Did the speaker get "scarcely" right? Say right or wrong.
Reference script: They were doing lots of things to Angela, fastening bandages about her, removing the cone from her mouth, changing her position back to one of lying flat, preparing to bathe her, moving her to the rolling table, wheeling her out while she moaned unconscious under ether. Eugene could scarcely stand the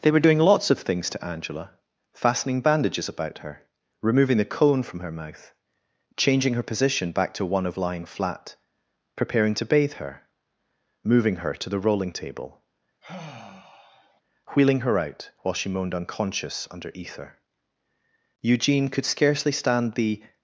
right